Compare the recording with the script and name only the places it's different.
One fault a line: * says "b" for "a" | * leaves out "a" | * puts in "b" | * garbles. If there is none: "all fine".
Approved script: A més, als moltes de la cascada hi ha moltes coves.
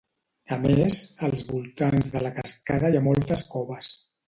* says "voltants" for "moltes"